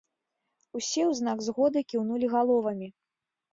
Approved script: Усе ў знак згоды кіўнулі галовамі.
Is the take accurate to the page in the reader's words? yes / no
yes